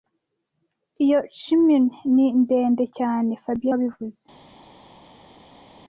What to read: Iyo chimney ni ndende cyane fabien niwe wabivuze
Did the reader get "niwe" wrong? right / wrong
wrong